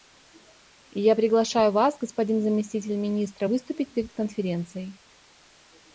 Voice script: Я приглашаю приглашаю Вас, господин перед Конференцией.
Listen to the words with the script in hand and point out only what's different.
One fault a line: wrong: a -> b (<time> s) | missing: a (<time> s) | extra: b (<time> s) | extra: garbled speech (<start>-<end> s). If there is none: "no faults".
missing: приглашаю (1.7 s)
extra: заместитель Министра выступить (2.4 s)